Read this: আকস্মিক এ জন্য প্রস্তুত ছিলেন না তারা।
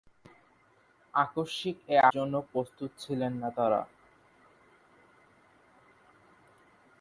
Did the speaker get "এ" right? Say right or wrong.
right